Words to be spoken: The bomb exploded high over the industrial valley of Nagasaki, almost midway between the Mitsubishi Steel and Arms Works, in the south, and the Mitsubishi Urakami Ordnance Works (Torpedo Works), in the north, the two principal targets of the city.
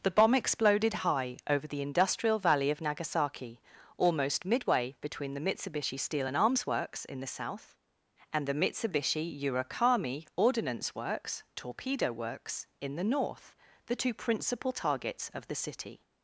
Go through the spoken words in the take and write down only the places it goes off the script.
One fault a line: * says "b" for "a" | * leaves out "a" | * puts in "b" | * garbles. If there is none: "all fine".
all fine